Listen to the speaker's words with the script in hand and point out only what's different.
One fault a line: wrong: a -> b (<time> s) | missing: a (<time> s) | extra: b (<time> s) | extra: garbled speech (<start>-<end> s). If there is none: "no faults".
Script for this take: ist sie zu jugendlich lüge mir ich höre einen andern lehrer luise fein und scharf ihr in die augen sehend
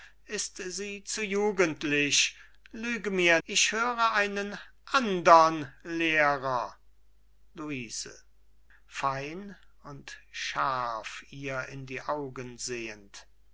no faults